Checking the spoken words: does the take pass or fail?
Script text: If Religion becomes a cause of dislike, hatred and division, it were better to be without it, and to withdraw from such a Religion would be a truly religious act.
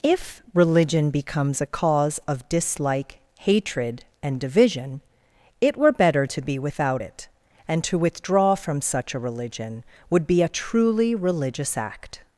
pass